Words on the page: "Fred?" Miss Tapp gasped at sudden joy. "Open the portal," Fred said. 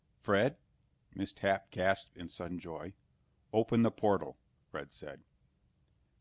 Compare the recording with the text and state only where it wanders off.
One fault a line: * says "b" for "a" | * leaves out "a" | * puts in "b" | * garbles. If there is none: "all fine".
* says "in" for "at"